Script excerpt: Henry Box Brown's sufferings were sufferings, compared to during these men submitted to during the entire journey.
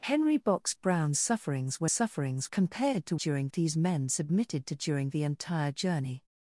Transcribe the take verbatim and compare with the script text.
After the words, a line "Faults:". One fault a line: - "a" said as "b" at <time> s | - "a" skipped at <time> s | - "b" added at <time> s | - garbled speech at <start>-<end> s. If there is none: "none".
Henry Box Brown's sufferings were sufferings, compared to during these men submitted to during the entire journey.
Faults:
none